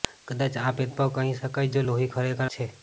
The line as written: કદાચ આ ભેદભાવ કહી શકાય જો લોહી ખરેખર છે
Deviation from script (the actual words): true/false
false